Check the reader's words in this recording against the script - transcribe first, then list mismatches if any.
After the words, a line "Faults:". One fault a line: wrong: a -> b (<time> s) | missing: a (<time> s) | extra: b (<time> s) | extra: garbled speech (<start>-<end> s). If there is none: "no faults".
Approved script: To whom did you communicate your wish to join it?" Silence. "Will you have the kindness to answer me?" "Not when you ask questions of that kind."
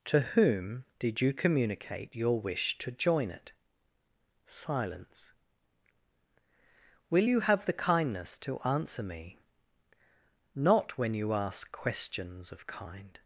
To whom did you communicate your wish to join it?" Silence. "Will you have the kindness to answer me?" "Not when you ask questions of kind."
Faults:
missing: that (12.7 s)